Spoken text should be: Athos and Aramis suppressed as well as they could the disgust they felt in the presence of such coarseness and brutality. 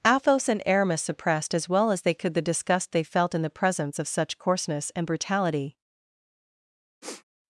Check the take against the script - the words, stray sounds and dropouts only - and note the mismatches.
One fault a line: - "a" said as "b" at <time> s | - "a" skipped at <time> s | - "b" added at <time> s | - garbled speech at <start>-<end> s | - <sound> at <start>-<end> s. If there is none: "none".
- sniff at 7.0-7.2 s